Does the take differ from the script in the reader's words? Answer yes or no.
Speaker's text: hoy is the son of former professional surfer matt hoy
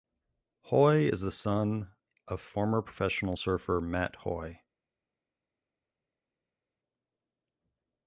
no